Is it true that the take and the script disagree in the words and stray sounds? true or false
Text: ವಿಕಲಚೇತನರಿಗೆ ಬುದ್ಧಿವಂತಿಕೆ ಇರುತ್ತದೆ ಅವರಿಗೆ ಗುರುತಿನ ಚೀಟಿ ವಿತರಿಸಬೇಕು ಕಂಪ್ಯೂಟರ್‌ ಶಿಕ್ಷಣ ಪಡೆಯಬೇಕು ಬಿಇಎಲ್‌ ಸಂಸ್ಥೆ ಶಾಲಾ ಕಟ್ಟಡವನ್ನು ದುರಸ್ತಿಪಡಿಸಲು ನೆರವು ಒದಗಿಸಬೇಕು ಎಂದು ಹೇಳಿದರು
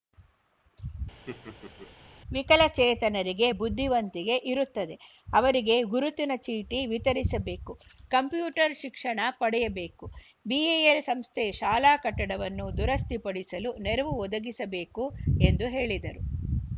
true